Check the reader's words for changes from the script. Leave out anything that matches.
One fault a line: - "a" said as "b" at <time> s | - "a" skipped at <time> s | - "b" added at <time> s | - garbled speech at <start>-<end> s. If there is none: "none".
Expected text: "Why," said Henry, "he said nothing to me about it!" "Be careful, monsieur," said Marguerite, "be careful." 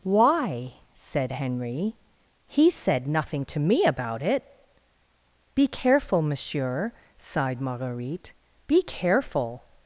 - "said" said as "sighed" at 7.2 s